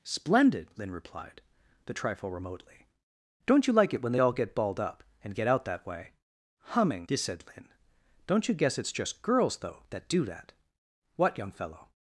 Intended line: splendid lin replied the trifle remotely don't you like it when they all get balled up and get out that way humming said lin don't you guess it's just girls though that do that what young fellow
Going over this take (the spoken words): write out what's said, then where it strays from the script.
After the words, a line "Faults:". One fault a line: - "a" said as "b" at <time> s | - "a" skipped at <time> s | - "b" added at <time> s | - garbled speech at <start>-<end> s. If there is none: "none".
splendid lin replied the trifle remotely don't you like it when they all get balled up and get out that way humming said lin don't you guess it's just girls though that do that what young fellow
Faults:
none